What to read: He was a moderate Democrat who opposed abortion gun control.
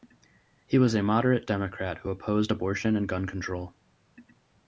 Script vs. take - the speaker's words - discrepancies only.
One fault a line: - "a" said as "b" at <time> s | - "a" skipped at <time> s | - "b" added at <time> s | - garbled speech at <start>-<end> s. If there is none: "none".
- "and" added at 2.9 s